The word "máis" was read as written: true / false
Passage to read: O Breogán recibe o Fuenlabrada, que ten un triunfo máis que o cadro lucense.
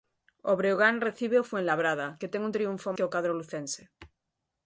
false